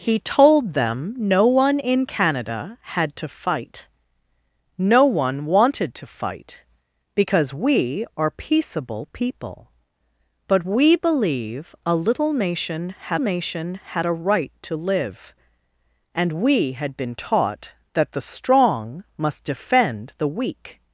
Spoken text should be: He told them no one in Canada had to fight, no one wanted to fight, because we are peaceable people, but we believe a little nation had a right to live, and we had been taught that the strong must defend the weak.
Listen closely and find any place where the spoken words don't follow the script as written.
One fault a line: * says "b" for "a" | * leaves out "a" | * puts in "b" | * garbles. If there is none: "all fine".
* puts in "nation had"